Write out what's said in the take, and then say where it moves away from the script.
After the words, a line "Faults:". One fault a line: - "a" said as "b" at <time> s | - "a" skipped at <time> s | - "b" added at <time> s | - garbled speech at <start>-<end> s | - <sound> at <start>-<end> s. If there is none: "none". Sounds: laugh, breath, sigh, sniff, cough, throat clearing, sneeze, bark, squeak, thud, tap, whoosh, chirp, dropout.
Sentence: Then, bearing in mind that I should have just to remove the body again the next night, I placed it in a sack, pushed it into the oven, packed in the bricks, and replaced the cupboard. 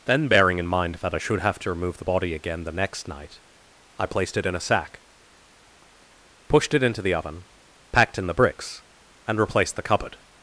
Then, bearing in mind that I should have to remove the body again the next night, I placed it in a sack, pushed it into the oven, packed in the bricks, and replaced the cupboard.
Faults:
- "just" skipped at 1.6 s